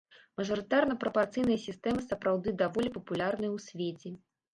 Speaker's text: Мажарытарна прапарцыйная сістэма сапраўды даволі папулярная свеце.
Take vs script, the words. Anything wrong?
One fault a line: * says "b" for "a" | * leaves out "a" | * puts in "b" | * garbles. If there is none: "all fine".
* puts in "ў"